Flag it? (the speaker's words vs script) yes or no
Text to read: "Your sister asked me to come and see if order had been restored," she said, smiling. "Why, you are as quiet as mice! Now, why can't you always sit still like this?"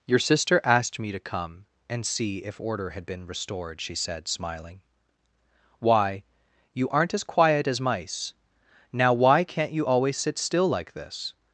yes